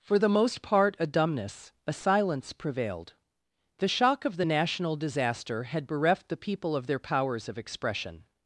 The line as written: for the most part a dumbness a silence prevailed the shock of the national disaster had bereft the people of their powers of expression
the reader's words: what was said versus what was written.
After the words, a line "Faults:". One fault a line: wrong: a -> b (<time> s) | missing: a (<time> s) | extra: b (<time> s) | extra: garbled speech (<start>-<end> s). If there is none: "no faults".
for the most part a dumbness a silence prevailed the shock of the national disaster had bereft the people of their powers of expression
Faults:
no faults